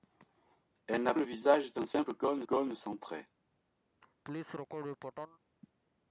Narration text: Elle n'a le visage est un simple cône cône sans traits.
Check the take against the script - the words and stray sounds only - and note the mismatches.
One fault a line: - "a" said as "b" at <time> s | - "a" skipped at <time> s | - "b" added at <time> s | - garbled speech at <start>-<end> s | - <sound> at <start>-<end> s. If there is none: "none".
- laugh at 4.0-5.4 s